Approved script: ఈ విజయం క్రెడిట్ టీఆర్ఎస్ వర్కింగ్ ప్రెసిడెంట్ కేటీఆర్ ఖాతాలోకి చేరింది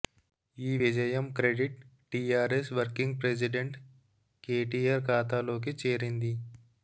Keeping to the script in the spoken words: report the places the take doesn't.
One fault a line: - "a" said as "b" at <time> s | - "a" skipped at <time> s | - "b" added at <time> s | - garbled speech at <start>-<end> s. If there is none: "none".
none